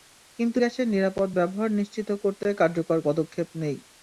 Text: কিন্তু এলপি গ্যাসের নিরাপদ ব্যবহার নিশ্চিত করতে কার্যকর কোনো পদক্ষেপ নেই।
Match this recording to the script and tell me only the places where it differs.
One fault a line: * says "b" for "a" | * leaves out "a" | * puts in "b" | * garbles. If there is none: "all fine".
* leaves out "এলপি"
* leaves out "কোনো"